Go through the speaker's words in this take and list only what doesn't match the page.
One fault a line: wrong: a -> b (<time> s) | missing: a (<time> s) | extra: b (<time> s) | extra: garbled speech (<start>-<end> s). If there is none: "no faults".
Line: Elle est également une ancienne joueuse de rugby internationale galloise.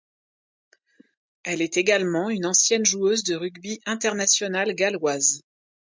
no faults